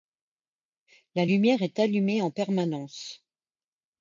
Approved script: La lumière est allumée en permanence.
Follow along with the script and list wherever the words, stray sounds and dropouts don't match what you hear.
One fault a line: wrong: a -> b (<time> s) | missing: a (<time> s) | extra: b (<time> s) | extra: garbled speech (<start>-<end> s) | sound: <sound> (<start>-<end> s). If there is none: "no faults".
no faults